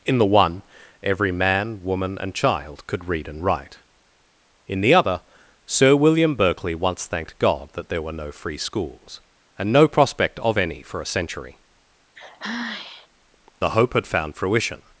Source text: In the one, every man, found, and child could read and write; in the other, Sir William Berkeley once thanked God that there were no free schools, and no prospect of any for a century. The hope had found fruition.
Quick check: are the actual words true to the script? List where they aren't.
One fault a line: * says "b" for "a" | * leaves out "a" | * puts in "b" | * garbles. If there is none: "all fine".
* says "woman" for "found"